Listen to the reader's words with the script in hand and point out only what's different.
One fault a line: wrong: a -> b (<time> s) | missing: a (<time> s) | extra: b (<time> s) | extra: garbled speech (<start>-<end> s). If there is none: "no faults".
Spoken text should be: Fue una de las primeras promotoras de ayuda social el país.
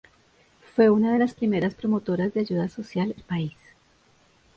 no faults